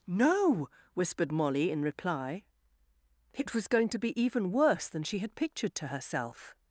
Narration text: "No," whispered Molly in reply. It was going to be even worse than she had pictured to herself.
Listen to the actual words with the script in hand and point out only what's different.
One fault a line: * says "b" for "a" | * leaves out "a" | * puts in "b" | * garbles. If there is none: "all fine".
all fine